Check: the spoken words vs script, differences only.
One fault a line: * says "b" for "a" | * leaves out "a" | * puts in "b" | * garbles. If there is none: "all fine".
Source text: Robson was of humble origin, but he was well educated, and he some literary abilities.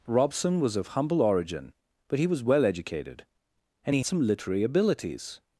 all fine